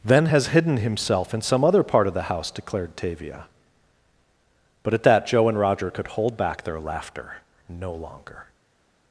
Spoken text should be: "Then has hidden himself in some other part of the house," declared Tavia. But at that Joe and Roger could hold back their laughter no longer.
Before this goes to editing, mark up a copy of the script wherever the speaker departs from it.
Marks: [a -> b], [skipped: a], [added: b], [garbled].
"Then has hidden himself in some other part of the house," declared Tavia. But at that Joe and Roger could hold back their laughter no longer.